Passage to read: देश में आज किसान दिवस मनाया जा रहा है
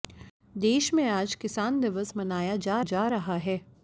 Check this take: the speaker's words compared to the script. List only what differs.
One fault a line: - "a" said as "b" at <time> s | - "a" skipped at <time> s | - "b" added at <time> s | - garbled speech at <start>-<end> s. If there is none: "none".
- "जा" added at 2.8 s